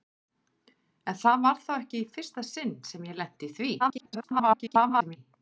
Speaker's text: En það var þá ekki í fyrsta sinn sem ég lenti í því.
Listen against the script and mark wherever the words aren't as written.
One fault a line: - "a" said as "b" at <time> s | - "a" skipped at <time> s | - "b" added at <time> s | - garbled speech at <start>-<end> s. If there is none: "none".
- garbled speech at 3.8-5.2 s